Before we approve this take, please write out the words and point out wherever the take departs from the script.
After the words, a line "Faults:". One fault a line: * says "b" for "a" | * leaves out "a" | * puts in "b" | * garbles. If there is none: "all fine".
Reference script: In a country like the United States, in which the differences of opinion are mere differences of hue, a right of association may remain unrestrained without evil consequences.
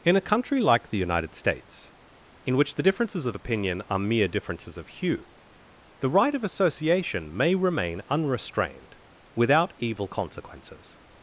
In a country like the United States, in which the differences of opinion are mere differences of hue, the right of association may remain unrestrained without evil consequences.
Faults:
* says "the" for "a"